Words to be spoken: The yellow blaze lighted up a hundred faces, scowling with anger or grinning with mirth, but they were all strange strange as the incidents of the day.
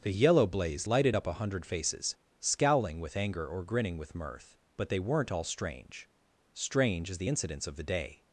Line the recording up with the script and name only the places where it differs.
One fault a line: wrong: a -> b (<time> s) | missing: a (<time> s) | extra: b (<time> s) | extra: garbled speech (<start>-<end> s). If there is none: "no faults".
wrong: were -> weren't (5.0 s)